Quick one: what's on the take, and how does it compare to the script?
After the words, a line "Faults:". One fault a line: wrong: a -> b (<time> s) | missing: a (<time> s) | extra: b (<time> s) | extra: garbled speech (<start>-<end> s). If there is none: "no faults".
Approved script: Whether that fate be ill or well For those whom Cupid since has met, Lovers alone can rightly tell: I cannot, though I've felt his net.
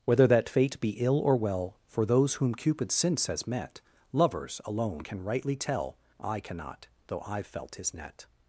Whether that fate be ill or well For those whom Cupid since has met, Lovers alone can rightly tell: I cannot, though I've felt his net.
Faults:
no faults